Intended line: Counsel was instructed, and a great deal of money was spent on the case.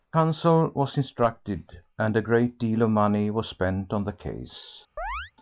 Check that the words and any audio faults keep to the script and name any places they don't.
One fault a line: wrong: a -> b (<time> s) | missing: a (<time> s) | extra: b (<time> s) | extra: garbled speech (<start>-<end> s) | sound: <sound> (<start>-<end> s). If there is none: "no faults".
sound: chirp (5.0-5.3 s)